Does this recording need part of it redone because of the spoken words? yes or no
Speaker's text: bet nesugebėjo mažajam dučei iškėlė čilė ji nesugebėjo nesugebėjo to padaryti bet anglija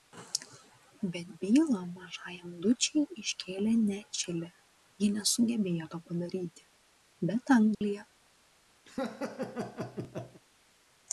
yes